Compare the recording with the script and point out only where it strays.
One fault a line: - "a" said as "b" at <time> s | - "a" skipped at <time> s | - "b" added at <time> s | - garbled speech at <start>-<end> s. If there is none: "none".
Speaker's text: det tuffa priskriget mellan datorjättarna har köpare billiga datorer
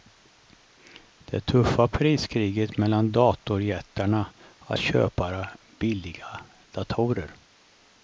none